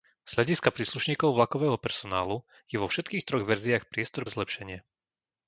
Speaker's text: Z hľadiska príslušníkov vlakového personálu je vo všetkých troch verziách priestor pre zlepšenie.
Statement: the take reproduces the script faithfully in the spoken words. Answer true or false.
false